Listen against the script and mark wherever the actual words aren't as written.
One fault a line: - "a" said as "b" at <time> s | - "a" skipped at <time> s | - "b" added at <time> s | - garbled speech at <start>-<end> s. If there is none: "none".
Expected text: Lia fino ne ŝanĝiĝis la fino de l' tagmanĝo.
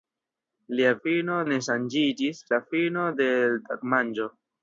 none